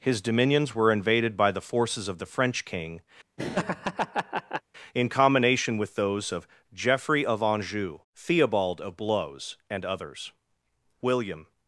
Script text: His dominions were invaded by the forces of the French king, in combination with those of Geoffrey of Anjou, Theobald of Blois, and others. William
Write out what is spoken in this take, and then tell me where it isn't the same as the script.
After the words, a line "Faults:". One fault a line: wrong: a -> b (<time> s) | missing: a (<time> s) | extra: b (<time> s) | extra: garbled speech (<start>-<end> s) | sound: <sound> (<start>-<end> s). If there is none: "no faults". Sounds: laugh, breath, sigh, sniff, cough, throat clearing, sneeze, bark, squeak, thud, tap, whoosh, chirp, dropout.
His dominions were invaded by the forces of the French king, in combination with those of Geoffrey of Anjou, Theobald of Blois, and others. William
Faults:
sound: laugh (3.4-4.6 s)